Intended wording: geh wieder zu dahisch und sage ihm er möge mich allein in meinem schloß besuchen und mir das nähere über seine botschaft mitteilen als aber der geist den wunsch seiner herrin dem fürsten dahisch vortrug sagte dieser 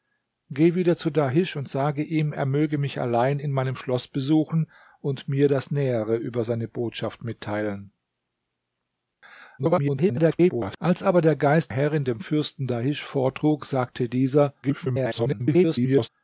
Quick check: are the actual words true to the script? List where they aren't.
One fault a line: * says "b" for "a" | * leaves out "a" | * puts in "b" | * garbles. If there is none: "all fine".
* garbles
* leaves out "den wunsch seiner"
* garbles